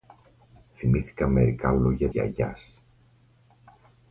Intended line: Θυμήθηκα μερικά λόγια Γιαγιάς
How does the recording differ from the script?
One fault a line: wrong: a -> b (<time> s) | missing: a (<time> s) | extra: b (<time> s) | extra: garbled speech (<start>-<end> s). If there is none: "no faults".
no faults